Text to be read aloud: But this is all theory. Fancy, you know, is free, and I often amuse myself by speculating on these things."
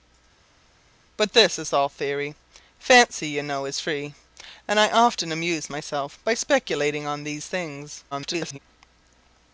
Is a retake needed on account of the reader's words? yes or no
yes